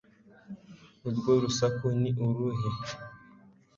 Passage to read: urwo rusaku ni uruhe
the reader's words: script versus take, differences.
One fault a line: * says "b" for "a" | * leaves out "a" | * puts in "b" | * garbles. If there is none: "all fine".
all fine